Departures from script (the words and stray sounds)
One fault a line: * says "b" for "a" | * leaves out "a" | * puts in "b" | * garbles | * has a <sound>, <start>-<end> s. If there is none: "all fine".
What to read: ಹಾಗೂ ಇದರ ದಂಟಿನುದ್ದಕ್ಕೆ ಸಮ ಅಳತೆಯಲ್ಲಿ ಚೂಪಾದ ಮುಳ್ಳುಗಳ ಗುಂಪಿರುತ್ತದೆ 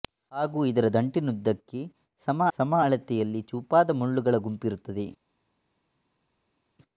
* puts in "ಸಮ"